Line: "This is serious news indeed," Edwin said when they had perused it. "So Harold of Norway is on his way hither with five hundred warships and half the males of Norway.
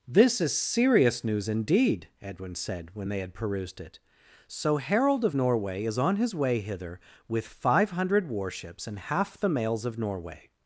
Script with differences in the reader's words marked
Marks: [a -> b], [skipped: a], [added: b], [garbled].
"This is serious news indeed," Edwin said when they had perused it. "So Harold of Norway is on his way hither with five hundred warships and half the males of Norway.